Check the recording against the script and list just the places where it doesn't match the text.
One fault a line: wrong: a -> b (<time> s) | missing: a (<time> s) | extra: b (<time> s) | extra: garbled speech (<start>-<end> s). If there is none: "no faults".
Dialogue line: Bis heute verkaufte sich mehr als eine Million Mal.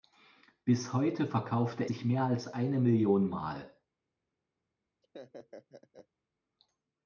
no faults